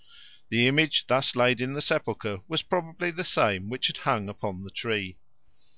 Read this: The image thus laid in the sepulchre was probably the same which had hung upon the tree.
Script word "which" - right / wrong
right